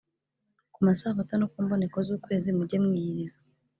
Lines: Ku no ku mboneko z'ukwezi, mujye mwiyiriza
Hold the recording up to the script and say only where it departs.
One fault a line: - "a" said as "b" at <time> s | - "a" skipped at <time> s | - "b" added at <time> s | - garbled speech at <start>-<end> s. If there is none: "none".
- "masabato" added at 0.9 s